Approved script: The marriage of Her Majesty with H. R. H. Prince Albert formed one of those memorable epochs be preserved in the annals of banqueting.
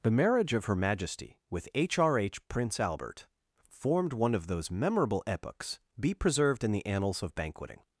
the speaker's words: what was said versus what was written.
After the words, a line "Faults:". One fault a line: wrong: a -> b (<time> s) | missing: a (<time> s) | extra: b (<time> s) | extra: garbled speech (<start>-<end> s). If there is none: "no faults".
The marriage of Her Majesty with H. R. H. Prince Albert formed one of those memorable epochs be preserved in the annals of banqueting.
Faults:
no faults